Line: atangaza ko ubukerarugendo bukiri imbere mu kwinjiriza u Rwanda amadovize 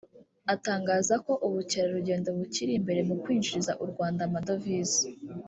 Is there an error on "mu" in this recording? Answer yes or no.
no